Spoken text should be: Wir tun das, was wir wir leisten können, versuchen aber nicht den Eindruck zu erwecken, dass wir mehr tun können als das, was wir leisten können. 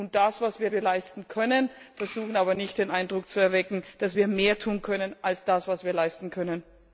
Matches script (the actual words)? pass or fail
pass